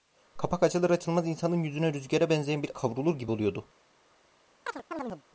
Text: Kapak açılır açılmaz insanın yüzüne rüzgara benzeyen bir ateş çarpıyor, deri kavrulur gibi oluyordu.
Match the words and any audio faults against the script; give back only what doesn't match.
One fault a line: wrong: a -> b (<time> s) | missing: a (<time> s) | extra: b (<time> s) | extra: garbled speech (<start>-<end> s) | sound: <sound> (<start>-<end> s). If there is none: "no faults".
missing: ateş çarpıyor deri (2.7 s)
sound: chirp (4.7-5.2 s)